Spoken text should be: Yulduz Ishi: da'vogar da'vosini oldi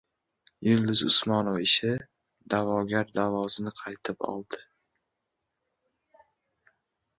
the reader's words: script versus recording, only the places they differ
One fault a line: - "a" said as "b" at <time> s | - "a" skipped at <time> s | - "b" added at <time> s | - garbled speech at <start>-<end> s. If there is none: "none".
- "Usmonova" added at 1.1 s
- "qaytib" added at 3.8 s